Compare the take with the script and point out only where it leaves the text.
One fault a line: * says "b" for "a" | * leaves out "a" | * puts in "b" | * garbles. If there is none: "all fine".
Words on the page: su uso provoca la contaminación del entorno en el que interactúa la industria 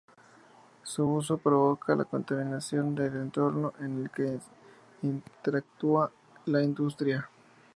all fine